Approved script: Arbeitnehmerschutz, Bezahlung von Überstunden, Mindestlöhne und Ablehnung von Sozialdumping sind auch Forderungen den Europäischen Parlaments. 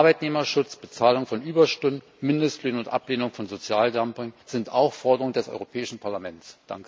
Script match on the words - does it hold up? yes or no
no